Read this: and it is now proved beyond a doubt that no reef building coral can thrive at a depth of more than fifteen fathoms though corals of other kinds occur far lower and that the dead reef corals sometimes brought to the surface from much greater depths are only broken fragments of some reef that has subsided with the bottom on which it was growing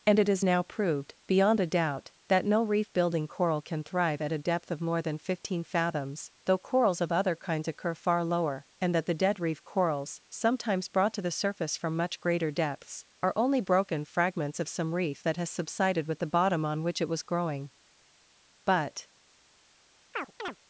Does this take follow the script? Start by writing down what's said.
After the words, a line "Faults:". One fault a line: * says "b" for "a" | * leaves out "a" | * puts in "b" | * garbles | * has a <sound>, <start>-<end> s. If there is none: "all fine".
and it is now proved beyond a doubt that no reef building coral can thrive at a depth of more than fifteen fathoms though corals of other kinds occur far lower and that the dead reef corals sometimes brought to the surface from much greater depths are only broken fragments of some reef that has subsided with the bottom on which it was growing but
Faults:
* puts in "but"
* has a chirp, 20.1-20.6 s